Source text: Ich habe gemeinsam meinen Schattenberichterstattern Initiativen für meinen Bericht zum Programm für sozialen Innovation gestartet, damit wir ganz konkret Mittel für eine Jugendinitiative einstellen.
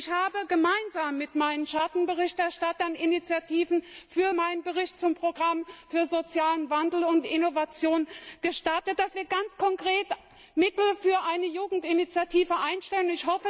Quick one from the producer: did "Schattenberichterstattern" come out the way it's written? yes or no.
yes